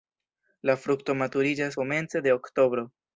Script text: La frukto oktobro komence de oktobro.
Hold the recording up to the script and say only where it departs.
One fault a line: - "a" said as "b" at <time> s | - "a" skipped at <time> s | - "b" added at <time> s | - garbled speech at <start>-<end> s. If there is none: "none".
- "oktobro" said as "maturiĝas" at 1.2 s